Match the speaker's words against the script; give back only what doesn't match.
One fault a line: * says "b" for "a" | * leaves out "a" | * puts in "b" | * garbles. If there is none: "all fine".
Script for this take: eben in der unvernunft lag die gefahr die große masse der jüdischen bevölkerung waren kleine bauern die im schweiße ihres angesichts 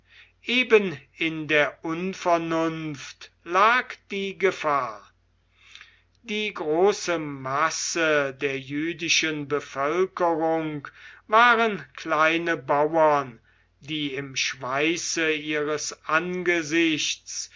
all fine